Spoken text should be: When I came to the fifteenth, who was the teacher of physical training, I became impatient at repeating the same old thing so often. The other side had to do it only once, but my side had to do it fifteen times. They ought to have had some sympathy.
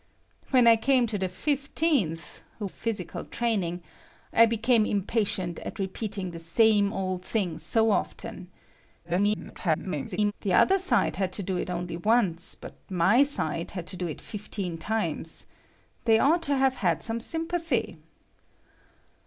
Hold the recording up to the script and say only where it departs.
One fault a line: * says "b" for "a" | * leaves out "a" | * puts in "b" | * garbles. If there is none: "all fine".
* leaves out "was the teacher"
* garbles